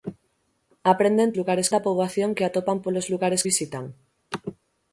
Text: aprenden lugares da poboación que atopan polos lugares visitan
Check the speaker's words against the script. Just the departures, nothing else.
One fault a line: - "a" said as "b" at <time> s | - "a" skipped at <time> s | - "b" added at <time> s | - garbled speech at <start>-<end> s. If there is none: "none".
none